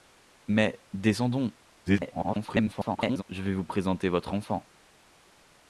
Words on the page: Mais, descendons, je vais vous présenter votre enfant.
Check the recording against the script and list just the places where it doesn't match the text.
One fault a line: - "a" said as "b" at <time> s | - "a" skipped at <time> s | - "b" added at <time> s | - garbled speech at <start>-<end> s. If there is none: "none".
- garbled speech at 1.9-3.2 s